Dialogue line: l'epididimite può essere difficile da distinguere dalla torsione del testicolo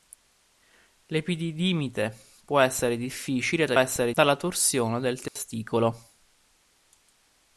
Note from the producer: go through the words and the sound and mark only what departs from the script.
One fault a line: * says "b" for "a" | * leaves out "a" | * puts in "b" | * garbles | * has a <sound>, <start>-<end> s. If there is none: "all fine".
* says "essere" for "distinguere"
* has a dropout, 5.3-5.4 s